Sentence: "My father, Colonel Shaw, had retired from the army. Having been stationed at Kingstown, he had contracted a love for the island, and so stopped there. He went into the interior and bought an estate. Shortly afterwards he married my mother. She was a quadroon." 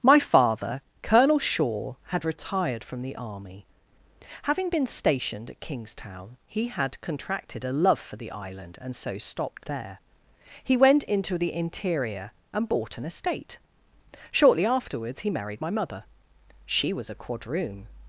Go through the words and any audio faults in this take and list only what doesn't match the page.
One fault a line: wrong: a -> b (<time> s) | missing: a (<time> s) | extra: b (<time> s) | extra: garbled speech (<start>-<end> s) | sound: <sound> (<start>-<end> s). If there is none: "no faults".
no faults